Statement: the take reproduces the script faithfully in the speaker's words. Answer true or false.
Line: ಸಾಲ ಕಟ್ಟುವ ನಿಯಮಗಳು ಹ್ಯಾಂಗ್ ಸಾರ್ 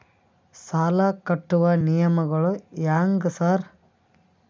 true